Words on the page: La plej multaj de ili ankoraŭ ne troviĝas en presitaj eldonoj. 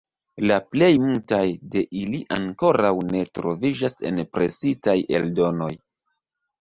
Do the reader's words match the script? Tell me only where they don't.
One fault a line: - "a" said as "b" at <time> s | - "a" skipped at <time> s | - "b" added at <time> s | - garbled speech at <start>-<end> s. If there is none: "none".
none